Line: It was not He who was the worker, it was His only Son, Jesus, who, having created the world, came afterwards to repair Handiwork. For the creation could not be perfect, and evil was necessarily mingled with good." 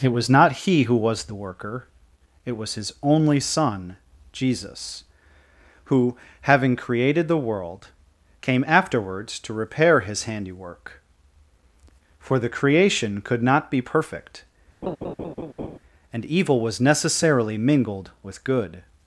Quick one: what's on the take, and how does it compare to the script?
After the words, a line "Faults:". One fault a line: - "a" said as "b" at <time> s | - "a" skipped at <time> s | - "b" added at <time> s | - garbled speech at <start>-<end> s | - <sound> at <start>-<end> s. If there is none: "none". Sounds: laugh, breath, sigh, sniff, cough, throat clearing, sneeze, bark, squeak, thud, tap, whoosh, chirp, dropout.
It was not He who was the worker, it was His only Son, Jesus, who, having created the world, came afterwards to repair His handiwork. For the creation could not be perfect, and evil was necessarily mingled with good."
Faults:
- "His" added at 10.0 s
- laugh at 14.8-15.8 s